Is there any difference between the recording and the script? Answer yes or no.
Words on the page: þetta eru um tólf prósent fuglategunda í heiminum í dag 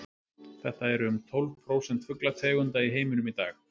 no